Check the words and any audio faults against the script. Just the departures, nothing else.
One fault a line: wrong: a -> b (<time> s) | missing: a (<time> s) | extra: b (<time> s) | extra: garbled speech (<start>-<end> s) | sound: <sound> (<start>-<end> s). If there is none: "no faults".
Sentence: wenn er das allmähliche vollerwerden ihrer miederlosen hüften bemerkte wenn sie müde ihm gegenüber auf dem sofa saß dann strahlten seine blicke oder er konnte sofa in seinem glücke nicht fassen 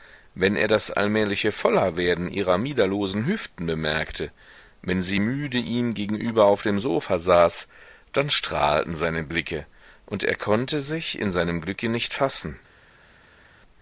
wrong: oder -> und (10.1 s)
wrong: sofa -> sich (10.8 s)